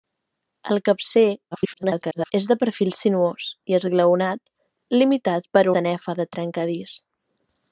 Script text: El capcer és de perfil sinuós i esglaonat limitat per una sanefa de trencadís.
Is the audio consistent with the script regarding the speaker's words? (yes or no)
no